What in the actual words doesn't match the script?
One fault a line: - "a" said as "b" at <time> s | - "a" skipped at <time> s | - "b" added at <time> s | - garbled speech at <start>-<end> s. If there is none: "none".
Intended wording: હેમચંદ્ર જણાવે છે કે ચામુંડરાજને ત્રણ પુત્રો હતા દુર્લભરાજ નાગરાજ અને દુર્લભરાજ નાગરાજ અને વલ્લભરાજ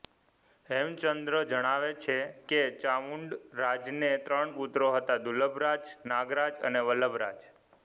- "દુર્લભરાજ નાગરાજ અને" skipped at 6.8 s